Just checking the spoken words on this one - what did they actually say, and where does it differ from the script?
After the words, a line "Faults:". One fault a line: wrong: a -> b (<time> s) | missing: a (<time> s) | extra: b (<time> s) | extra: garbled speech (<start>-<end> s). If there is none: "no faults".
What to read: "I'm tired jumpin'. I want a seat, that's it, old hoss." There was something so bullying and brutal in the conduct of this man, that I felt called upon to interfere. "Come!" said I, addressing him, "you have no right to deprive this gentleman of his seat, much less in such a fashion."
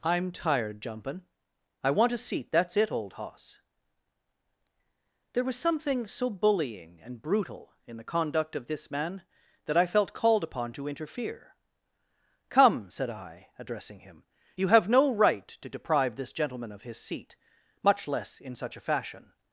"I'm tired jumpin'. I want a seat, that's it, old hoss." There was something so bullying and brutal in the conduct of this man, that I felt called upon to interfere. "Come!" said I, addressing him, "you have no right to deprive this gentleman of his seat, much less in such a fashion."
Faults:
no faults